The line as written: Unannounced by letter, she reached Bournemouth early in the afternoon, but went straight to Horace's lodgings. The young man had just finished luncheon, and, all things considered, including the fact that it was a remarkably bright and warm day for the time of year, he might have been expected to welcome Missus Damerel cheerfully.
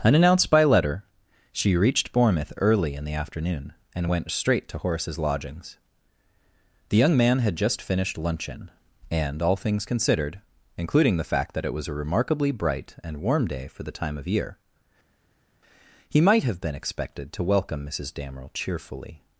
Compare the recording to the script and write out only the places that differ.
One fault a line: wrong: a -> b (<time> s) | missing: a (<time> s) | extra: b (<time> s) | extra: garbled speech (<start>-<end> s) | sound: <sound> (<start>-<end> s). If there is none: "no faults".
wrong: but -> and (4.0 s)